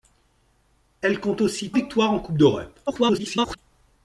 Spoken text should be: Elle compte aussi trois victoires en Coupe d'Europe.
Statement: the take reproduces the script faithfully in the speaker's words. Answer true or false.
false